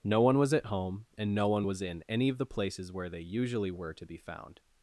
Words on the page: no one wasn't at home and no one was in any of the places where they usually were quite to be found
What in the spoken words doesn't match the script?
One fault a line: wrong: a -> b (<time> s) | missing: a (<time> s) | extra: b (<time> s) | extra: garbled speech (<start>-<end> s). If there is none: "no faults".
wrong: wasn't -> was (0.4 s)
missing: quite (3.9 s)